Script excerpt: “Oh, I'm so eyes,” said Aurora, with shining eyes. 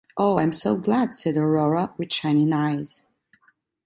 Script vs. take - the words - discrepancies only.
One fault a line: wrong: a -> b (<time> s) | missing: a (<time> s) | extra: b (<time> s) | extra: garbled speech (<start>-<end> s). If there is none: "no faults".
wrong: eyes -> glad (0.8 s)